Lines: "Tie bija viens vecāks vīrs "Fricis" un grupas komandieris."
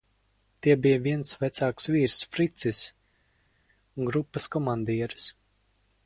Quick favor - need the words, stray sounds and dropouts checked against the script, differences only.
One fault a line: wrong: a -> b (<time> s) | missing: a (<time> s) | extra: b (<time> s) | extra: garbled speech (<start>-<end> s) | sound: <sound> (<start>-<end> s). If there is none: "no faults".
no faults